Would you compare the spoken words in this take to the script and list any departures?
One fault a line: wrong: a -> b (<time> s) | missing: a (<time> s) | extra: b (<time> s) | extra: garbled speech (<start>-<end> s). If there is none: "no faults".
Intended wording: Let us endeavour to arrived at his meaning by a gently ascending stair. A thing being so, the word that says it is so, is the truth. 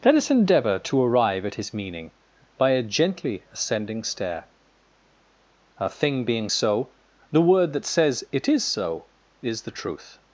wrong: arrived -> arrive (1.0 s)